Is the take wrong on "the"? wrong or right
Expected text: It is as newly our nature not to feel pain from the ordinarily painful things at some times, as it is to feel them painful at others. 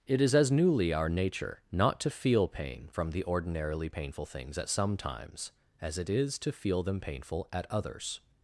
right